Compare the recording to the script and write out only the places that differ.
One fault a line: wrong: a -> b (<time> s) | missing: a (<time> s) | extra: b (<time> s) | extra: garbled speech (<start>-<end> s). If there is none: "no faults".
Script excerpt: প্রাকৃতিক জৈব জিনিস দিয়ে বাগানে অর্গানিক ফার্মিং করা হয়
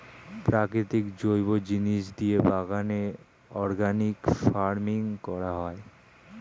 no faults